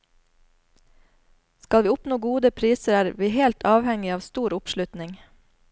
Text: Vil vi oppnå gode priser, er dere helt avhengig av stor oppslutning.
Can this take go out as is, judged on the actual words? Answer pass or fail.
fail